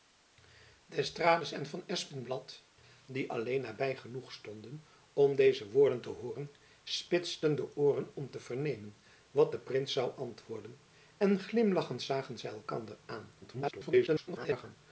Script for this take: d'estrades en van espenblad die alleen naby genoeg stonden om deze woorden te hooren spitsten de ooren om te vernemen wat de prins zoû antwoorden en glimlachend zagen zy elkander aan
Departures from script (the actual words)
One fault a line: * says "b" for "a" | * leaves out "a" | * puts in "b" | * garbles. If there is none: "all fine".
* garbles